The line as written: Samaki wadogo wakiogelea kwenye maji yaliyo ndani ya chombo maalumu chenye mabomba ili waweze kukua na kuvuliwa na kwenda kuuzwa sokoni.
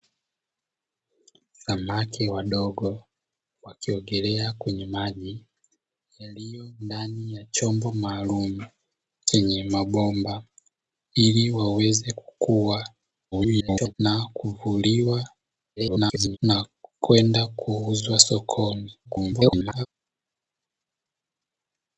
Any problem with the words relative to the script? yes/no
yes